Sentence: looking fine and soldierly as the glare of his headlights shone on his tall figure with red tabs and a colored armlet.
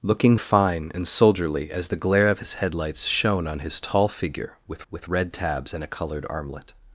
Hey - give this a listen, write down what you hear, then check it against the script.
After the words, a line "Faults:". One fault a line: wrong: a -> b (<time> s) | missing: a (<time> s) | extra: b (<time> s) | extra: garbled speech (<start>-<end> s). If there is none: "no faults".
looking fine and soldierly as the glare of his headlights shone on his tall figure with with red tabs and a colored armlet.
Faults:
extra: with (4.9 s)